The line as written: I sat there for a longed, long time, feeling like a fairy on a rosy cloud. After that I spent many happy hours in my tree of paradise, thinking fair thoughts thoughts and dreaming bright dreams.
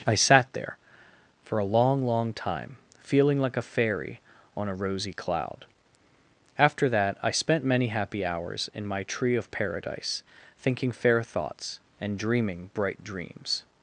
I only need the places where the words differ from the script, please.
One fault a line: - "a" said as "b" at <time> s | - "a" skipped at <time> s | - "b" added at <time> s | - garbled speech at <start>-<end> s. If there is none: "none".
- "longed" said as "long" at 1.6 s
- "thoughts" skipped at 11.8 s